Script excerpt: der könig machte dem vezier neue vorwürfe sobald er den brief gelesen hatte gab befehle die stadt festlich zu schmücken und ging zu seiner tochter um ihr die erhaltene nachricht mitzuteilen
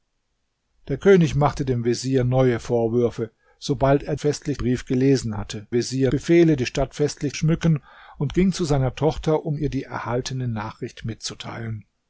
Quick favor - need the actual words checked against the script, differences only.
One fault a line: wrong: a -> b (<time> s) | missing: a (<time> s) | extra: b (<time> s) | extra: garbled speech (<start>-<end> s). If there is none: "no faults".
wrong: den -> festlich (4.2 s)
wrong: gab -> vezier (5.7 s)
missing: zu (7.4 s)